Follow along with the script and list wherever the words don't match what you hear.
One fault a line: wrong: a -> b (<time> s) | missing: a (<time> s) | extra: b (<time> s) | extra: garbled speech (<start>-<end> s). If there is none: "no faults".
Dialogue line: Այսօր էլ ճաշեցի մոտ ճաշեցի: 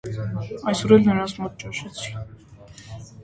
wrong: ճաշեցի -> նրանց (1.1 s)